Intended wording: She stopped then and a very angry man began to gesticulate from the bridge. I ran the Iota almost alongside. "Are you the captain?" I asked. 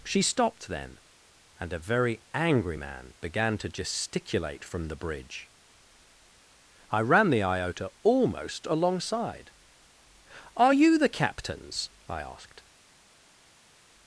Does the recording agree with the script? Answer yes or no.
no